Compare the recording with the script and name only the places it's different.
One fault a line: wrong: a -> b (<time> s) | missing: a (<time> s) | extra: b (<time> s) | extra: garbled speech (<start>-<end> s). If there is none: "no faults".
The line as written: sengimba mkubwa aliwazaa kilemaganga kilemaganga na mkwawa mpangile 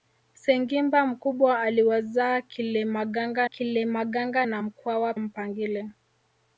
no faults